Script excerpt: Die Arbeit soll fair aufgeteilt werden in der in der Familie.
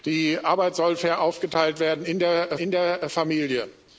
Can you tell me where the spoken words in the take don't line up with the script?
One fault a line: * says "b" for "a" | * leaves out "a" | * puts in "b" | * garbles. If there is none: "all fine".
all fine